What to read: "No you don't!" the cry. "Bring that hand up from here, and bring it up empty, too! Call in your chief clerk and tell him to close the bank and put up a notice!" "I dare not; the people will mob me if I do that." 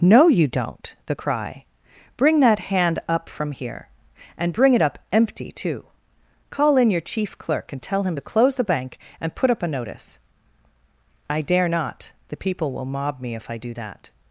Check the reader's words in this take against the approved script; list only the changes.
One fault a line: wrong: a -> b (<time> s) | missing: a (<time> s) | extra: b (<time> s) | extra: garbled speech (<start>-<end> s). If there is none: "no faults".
no faults